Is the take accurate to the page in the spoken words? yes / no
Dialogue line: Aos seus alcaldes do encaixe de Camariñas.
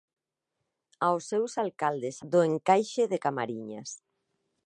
yes